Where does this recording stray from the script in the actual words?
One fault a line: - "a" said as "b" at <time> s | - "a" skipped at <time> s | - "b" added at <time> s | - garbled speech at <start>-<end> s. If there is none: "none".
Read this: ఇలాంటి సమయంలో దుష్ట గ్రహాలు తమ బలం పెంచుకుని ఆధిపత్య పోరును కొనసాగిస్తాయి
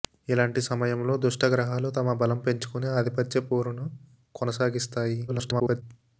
- garbled speech at 5.3-5.8 s